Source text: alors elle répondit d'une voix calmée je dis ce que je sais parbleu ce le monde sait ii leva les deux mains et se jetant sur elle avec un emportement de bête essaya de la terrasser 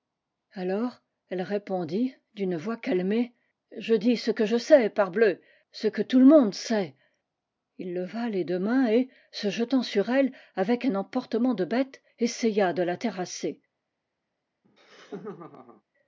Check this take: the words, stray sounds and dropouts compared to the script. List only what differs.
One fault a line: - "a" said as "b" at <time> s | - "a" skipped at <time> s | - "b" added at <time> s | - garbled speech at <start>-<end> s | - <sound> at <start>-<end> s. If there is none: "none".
- "que tout" added at 5.9 s
- laugh at 14.6-15.8 s